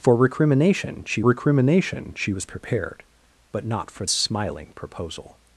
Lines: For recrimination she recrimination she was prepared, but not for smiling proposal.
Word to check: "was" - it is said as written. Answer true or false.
true